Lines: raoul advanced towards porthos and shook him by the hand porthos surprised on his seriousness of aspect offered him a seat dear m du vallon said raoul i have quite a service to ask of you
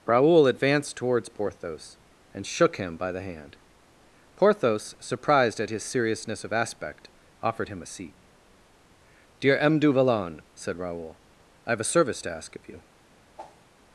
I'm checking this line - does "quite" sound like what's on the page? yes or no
no